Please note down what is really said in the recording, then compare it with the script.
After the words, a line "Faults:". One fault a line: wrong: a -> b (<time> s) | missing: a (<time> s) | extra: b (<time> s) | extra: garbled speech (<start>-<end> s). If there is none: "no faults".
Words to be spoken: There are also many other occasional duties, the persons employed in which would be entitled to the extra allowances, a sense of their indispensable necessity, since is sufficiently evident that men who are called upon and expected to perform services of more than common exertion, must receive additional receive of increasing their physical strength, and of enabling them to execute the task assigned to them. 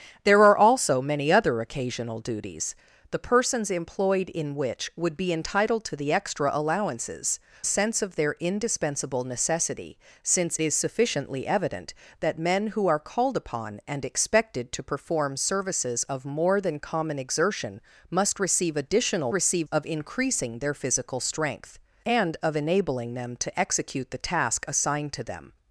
There are also many other occasional duties, the persons employed in which would be entitled to the extra allowances, a sense of their indispensable necessity, since is sufficiently evident that men who are called upon and expected to perform services of more than common exertion, must receive additional receive of increasing their physical strength, and of enabling them to execute the task assigned to them.
Faults:
no faults